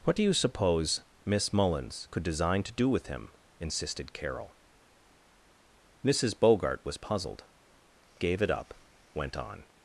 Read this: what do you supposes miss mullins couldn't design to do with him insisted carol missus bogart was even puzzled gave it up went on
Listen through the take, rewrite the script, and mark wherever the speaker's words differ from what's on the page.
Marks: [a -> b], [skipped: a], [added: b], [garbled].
what do you [supposes -> suppose] miss mullins [couldn't -> could] design to do with him insisted carol missus bogart was [skipped: even] puzzled gave it up went on